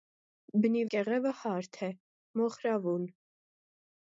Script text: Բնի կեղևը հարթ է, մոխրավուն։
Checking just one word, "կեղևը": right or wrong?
right